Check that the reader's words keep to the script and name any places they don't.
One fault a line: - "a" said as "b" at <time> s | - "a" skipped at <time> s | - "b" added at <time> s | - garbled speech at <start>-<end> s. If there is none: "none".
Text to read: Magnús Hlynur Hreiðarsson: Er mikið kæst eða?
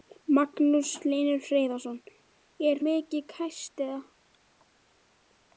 none